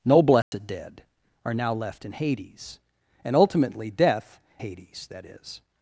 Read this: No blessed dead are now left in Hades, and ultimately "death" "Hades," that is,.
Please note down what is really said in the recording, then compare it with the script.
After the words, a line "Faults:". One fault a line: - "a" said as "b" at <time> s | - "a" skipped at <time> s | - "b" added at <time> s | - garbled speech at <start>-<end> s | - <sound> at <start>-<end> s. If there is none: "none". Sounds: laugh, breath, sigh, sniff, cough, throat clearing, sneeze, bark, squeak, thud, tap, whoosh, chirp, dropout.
No blessed dead are now left in Hades, and ultimately "death" "Hades," that is,.
Faults:
- dropout at 0.4-0.5 s